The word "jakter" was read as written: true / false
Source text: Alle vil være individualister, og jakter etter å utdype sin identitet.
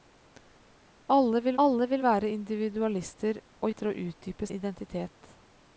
false